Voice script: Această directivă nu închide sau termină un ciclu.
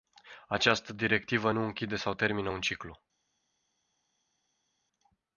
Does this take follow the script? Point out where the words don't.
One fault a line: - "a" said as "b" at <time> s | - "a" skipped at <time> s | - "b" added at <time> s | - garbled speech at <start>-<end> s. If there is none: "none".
none